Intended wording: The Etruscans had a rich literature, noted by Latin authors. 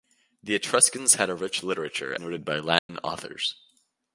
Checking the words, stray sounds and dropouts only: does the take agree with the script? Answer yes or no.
no